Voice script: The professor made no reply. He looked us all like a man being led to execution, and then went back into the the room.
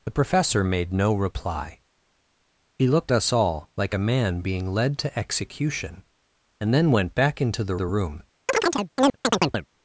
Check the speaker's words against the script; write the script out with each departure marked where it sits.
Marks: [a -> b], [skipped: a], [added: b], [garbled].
The professor made no reply. He looked us all like a man being led to execution, and then went back into the the room.